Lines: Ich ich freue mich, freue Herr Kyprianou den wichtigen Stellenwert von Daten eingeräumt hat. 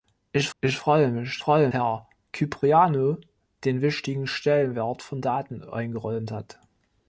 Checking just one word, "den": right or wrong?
right